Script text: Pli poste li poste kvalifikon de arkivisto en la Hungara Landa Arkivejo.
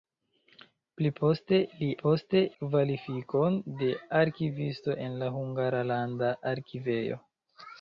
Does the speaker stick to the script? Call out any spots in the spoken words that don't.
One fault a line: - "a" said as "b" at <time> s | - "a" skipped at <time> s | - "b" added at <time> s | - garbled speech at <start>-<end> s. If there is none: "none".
none